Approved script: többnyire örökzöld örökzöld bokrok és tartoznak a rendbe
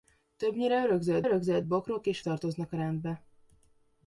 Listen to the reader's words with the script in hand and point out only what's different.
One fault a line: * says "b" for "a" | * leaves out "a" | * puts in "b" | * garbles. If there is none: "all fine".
all fine